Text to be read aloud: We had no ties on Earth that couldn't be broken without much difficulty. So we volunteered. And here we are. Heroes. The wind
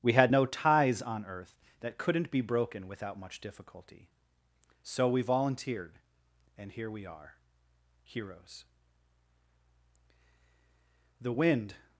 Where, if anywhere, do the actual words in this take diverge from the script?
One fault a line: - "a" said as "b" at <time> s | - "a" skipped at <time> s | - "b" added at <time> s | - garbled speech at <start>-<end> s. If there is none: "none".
none